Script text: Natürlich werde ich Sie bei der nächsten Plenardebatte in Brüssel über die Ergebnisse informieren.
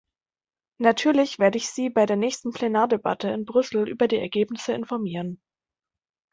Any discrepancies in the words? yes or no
no